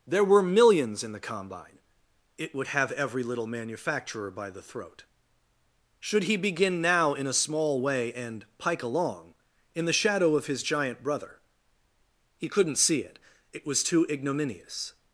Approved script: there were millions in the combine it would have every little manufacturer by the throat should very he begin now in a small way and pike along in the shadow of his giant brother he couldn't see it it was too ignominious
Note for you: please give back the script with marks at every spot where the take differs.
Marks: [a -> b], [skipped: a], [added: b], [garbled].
there were millions in the combine it would have every little manufacturer by the throat should [skipped: very] he begin now in a small way and pike along in the shadow of his giant brother he couldn't see it it was too ignominious